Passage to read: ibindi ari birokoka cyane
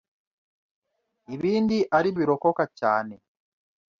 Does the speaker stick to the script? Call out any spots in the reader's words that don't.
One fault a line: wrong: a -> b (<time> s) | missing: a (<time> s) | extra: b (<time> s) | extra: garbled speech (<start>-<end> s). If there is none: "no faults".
no faults